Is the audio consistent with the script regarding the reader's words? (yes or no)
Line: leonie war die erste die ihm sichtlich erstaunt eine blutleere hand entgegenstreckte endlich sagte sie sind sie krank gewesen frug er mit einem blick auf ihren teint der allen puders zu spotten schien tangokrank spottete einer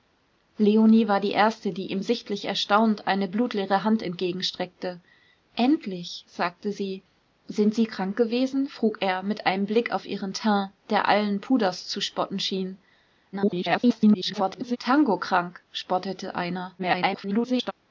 no